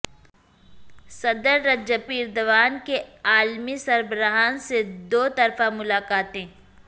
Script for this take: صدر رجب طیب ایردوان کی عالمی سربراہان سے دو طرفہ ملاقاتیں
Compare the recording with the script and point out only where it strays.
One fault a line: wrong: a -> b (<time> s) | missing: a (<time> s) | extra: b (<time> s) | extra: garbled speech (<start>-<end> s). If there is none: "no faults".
missing: طیب (2.0 s)